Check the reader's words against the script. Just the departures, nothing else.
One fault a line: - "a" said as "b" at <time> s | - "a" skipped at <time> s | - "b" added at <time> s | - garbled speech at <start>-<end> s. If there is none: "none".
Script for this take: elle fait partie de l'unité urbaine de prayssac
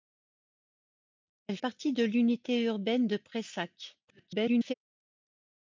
- "fait" skipped at 1.6 s
- garbled speech at 4.1-4.7 s